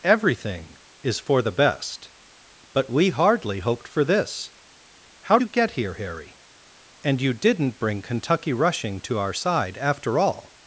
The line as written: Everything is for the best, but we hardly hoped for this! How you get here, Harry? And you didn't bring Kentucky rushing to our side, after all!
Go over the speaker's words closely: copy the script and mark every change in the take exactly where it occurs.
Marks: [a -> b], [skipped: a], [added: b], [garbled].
Everything is for the best, but we hardly hoped for this! How you get here, Harry? And you didn't bring Kentucky rushing to our side, after all!